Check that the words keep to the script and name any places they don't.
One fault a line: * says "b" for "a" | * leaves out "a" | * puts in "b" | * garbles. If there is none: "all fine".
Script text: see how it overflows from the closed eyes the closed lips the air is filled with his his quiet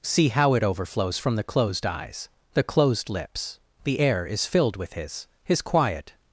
all fine